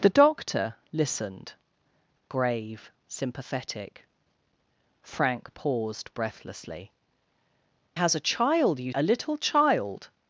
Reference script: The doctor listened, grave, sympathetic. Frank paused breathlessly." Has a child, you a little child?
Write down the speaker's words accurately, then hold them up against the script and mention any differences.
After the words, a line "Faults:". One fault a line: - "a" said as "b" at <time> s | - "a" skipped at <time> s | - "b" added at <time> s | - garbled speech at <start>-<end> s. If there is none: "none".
The doctor listened, grave, sympathetic. Frank paused breathlessly." Has a child, you a little child?
Faults:
none